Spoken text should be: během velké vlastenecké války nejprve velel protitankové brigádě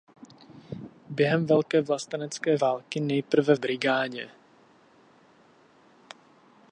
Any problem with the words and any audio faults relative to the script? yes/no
yes